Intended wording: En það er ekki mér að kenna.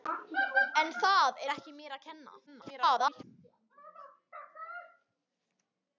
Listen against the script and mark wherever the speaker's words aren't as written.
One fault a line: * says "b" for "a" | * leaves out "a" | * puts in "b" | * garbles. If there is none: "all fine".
* garbles